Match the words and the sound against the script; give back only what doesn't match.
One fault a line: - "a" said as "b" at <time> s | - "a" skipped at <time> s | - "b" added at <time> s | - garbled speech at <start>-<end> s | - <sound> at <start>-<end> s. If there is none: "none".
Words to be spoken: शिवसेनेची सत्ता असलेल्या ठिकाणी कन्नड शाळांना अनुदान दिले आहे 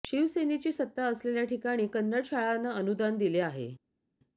none